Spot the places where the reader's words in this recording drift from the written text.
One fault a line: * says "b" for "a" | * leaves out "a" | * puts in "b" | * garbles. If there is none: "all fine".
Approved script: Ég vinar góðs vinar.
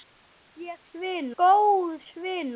all fine